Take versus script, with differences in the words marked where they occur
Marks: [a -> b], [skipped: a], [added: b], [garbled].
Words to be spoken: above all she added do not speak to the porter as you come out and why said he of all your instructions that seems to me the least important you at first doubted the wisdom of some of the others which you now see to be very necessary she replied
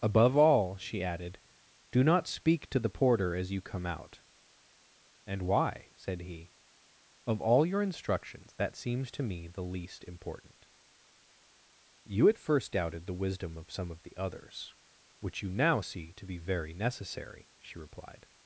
above all she added do not speak to the porter as you come out and why said he of all your instructions that seems to me the least important you at first doubted the wisdom of some of the others which you now see to be very necessary she replied